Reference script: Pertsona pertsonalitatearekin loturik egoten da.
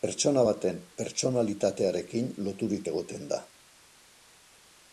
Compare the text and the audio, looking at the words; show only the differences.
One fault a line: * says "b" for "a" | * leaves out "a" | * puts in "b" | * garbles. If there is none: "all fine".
* puts in "baten"